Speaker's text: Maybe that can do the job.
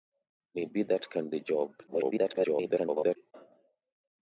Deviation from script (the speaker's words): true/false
true